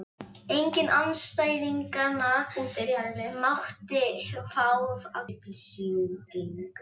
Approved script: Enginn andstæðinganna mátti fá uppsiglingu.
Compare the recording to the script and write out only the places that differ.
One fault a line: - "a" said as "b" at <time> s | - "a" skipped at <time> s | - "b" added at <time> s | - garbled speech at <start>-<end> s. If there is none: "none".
none